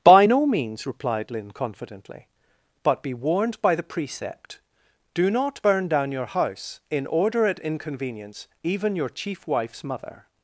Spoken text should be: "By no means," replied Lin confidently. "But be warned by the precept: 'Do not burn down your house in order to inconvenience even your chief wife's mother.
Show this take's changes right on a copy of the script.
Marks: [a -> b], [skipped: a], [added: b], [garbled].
"By no means," replied Lin confidently. "But be warned by the precept: 'Do not burn down your house in order [to -> at] inconvenience even your chief wife's mother.